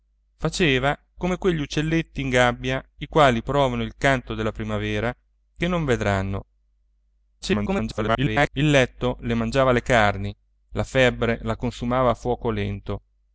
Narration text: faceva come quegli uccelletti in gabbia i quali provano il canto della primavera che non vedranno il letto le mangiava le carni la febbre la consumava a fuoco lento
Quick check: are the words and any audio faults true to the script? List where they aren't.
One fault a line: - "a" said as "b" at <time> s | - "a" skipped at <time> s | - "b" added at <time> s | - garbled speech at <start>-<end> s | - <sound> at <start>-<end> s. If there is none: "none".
- garbled speech at 7.4-8.5 s